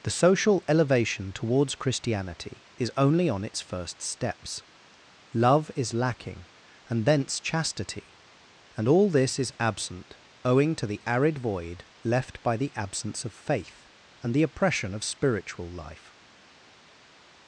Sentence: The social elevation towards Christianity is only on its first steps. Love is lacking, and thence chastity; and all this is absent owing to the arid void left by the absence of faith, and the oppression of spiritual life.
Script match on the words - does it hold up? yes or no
yes